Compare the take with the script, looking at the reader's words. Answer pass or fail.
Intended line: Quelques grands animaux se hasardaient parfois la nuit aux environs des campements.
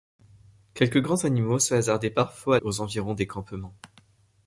fail